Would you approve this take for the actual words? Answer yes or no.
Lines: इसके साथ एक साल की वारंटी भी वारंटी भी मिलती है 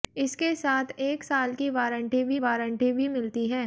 yes